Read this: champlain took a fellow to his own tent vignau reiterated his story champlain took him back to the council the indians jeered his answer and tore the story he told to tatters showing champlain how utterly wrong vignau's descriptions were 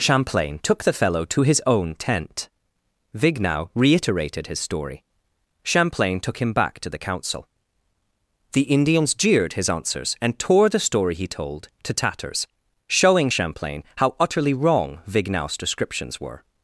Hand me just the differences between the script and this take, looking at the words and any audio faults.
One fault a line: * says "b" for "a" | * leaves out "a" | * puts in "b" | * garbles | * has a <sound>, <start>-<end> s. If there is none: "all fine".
* says "the" for "a"
* says "answers" for "answer"